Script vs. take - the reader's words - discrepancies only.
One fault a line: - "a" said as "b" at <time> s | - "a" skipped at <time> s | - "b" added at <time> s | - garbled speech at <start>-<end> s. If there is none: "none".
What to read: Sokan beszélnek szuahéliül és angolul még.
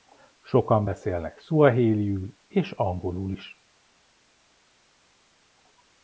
- "még" said as "is" at 3.3 s